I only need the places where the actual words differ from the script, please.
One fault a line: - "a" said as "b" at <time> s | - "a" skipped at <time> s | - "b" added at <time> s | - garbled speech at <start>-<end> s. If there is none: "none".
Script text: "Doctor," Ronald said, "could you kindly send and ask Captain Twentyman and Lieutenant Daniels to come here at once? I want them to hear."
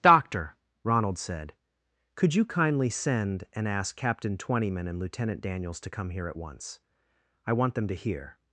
none